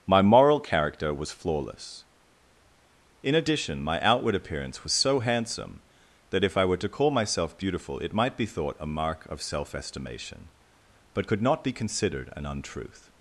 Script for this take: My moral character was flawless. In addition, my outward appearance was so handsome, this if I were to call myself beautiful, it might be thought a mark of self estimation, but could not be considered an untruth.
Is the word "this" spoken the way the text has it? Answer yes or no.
no